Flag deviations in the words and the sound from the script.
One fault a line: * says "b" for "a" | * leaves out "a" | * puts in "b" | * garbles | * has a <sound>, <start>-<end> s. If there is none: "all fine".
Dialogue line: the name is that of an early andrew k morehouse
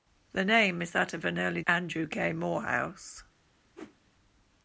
* has a whoosh, 3.7-4.0 s